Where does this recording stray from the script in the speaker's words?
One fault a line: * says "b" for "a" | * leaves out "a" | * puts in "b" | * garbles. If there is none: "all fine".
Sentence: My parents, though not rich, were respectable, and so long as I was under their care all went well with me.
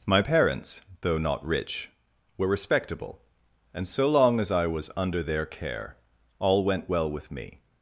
all fine